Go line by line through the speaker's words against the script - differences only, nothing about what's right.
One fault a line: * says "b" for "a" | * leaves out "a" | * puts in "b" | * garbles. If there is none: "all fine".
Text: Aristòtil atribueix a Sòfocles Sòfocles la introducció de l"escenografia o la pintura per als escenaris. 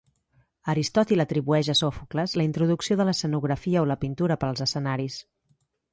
* leaves out "Sòfocles"